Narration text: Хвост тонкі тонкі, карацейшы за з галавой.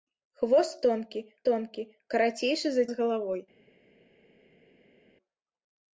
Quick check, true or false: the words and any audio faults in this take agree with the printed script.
true